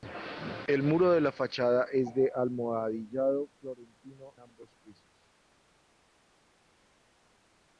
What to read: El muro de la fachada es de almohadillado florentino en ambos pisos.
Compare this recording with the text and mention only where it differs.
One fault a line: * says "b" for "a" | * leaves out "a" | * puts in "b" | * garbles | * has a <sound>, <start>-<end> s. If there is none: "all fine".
* leaves out "en"